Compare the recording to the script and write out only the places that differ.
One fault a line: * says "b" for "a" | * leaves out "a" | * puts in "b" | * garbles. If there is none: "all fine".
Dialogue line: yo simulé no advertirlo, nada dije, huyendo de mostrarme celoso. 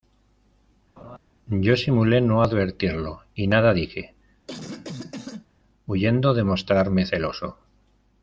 * puts in "y"